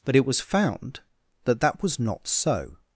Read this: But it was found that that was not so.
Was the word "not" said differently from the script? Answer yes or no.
no